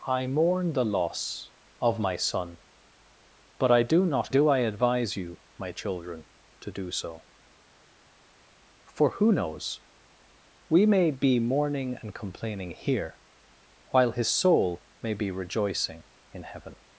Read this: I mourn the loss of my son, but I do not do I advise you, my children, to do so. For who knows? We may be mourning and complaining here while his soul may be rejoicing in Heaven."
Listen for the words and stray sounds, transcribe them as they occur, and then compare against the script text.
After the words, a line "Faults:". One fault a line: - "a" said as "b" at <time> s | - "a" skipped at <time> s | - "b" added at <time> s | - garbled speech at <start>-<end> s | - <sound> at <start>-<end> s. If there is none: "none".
I mourn the loss of my son, but I do not do I advise you, my children, to do so. For who knows? We may be mourning and complaining here while his soul may be rejoicing in Heaven."
Faults:
none